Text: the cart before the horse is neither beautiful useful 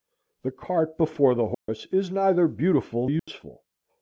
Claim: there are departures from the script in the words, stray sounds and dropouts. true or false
true